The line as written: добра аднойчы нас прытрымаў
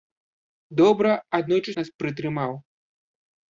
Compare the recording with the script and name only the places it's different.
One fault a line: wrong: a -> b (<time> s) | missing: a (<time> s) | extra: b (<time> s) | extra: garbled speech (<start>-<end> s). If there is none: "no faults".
no faults